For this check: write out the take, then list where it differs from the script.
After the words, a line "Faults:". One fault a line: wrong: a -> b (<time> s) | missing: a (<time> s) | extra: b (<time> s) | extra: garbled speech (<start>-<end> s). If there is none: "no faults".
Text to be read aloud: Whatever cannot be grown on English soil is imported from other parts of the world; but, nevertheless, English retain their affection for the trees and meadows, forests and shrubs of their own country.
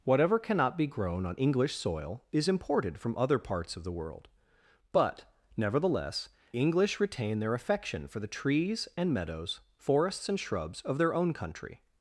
Whatever cannot be grown on English soil is imported from other parts of the world; but, nevertheless, English retain their affection for the trees and meadows, forests and shrubs of their own country.
Faults:
no faults